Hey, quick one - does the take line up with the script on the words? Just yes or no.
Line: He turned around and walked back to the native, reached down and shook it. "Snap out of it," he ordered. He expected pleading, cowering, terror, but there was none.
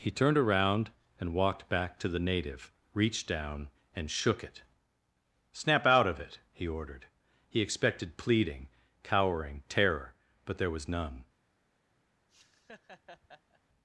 yes